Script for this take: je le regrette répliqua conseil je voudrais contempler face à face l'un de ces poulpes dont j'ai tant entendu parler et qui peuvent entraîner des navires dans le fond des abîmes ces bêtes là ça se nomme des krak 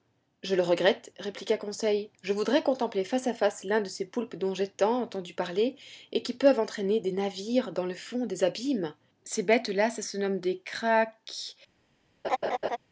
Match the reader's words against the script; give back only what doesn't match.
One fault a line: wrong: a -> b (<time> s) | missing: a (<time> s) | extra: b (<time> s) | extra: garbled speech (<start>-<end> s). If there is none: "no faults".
no faults